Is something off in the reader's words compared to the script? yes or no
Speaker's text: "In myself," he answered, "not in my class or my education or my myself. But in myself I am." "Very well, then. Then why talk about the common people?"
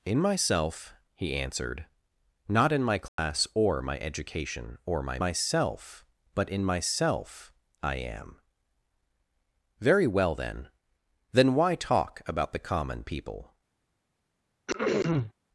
no